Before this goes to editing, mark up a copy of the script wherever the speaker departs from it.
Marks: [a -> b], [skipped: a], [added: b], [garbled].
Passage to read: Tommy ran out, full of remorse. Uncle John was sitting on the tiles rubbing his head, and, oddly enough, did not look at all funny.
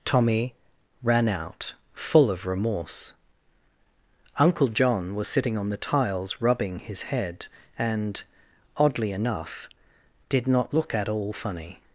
Tommy ran out, full of remorse. Uncle John was sitting on the tiles rubbing his head, and, oddly enough, did not look at all funny.